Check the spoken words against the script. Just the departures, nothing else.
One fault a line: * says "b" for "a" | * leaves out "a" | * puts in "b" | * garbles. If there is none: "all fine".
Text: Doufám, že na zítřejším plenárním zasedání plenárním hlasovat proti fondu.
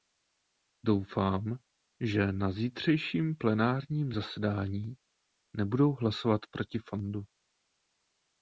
* says "nebudou" for "plenárním"